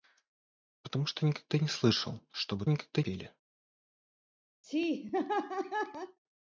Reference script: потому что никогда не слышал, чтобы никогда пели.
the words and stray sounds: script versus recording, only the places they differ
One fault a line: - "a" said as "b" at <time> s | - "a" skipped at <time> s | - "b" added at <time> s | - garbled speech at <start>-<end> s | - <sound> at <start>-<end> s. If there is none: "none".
- laugh at 4.6-6.2 s